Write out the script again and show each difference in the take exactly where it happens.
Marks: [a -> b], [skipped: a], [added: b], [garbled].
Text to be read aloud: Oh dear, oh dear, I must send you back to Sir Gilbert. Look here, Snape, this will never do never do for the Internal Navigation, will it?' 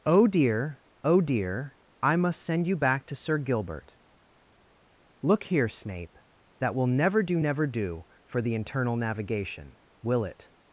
Oh dear, oh dear, I must send you back to Sir Gilbert. Look here, Snape, [this -> that] will never do never do for the Internal Navigation, will it?'